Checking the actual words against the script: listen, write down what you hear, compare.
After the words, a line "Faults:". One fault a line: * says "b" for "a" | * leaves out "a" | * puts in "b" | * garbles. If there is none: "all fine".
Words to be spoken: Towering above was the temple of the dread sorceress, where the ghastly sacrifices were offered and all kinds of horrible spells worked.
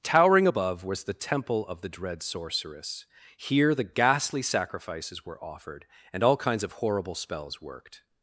Towering above was the temple of the dread sorceress, here the ghastly sacrifices were offered and all kinds of horrible spells worked.
Faults:
* says "here" for "where"